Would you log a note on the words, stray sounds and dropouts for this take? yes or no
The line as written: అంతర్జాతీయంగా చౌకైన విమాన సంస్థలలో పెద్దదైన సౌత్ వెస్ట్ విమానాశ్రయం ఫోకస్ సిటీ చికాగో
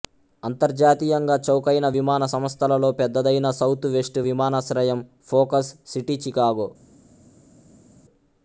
no